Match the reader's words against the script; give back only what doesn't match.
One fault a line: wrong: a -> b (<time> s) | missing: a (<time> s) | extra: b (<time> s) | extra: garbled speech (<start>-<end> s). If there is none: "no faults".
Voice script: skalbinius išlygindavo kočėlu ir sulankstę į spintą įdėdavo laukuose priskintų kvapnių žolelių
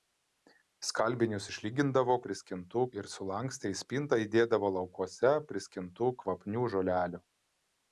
wrong: kočėlu -> priskintų (2.3 s)